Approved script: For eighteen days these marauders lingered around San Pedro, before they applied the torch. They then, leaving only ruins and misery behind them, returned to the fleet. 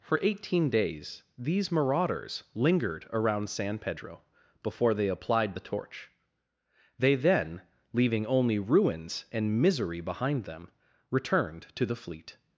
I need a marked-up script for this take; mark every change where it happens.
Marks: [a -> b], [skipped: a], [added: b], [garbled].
For eighteen days these marauders lingered around San Pedro, before they applied the torch. They then, leaving only ruins and misery behind them, returned to the fleet.